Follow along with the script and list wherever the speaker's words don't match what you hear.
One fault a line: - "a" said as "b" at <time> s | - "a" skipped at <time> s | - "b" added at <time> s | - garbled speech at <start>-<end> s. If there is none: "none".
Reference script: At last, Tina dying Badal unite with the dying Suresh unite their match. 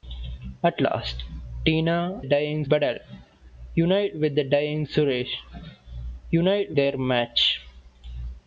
none